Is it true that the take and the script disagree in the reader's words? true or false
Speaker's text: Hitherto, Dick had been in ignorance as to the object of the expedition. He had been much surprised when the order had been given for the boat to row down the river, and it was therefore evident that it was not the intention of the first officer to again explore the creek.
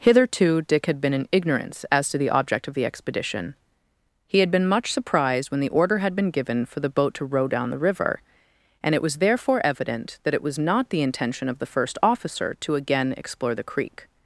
false